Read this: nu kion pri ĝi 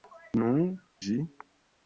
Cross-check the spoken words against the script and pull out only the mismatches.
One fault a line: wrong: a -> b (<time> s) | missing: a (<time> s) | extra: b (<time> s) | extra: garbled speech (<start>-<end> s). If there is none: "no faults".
missing: kion pri (0.5 s)